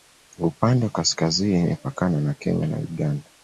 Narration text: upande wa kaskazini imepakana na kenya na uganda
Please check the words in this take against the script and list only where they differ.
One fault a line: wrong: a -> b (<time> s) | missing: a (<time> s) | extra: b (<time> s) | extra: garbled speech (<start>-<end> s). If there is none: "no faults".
no faults